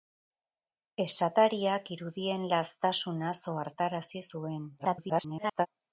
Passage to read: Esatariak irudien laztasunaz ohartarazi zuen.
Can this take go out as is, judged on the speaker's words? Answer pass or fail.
fail